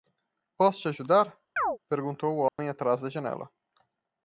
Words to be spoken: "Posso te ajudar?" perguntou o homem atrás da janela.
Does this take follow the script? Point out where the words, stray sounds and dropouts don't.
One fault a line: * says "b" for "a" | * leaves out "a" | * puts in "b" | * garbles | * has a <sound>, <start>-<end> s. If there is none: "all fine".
* has a chirp, 1.6-1.8 s
* has a dropout, 2.5-2.6 s